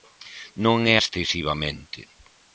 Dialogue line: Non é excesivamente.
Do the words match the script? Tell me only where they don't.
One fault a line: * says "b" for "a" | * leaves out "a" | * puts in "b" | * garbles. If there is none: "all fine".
all fine